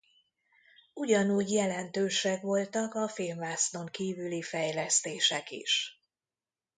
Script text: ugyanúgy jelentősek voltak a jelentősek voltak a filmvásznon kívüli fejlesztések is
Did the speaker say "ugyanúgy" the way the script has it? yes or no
yes